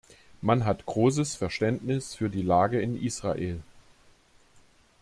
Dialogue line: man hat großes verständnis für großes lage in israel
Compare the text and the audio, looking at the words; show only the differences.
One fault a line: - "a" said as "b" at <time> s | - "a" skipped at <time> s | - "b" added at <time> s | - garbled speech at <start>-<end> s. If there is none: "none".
- "großes" said as "die" at 2.3 s